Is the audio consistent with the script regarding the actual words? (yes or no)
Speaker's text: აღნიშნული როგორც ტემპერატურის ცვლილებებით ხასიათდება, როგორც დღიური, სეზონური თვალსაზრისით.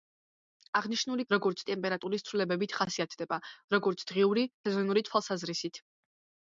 yes